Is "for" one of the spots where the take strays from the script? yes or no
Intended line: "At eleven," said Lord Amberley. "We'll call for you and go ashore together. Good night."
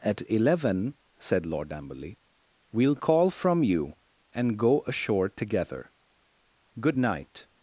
yes